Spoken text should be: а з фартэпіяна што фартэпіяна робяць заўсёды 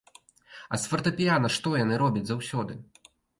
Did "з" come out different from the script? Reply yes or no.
no